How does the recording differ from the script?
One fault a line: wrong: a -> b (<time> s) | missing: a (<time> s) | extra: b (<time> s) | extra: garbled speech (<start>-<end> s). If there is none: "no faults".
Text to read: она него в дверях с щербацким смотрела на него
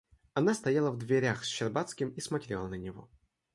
wrong: него -> стояла (0.6 s)
extra: и (2.1 s)